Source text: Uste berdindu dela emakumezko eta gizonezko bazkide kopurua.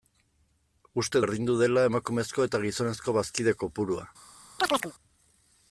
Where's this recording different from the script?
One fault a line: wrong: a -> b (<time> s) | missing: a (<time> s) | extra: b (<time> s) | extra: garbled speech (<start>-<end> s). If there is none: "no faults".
no faults